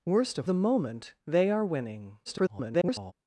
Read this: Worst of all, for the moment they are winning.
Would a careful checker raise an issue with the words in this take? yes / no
yes